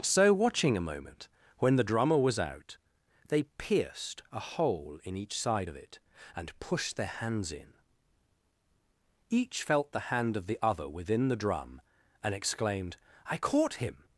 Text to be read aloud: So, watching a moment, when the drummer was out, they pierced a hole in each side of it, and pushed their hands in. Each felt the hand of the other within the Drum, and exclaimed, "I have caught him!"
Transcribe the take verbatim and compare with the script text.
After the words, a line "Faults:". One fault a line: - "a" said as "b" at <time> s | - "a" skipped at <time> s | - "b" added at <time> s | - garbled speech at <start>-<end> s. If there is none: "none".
So, watching a moment, when the drummer was out, they pierced a hole in each side of it, and pushed their hands in. Each felt the hand of the other within the Drum, and exclaimed, "I caught him!"
Faults:
- "have" skipped at 13.4 s